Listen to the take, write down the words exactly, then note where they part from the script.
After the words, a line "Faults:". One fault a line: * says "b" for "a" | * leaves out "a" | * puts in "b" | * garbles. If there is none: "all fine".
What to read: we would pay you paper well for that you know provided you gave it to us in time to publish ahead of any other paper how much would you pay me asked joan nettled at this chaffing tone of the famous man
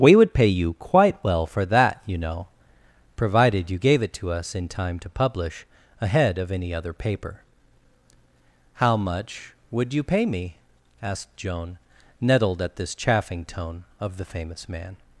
we would pay you quite well for that you know provided you gave it to us in time to publish ahead of any other paper how much would you pay me asked joan nettled at this chaffing tone of the famous man
Faults:
* says "quite" for "paper"